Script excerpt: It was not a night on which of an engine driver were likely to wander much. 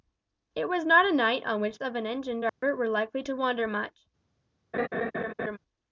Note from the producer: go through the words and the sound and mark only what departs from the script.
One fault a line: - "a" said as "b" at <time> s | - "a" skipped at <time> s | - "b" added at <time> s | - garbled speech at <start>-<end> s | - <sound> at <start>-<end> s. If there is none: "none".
- dropout at 2.5-2.6 s
- laugh at 4.7-5.6 s